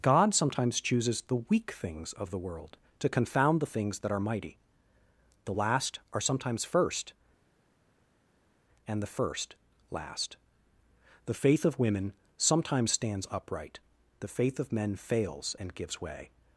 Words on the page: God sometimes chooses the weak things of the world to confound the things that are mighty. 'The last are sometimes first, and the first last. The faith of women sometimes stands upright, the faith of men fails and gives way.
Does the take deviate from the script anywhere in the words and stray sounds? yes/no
no